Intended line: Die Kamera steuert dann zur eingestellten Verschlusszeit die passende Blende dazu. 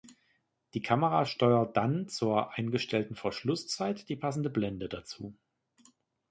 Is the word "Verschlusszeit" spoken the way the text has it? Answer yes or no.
yes